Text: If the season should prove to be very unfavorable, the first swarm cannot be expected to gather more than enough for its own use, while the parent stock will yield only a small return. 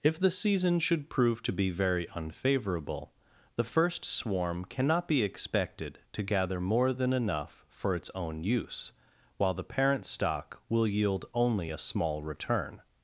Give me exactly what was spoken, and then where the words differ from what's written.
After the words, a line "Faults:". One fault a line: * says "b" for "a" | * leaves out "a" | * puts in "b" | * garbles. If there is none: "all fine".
If the season should prove to be very unfavorable, the first swarm cannot be expected to gather more than enough for its own use, while the parent stock will yield only a small return.
Faults:
all fine